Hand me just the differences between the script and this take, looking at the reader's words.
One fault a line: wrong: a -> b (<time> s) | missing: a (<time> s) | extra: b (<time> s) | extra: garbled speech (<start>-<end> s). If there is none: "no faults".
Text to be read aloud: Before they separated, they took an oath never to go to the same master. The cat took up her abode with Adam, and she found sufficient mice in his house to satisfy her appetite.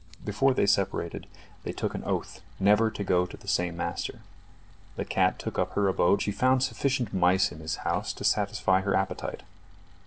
missing: with Adam and (6.2 s)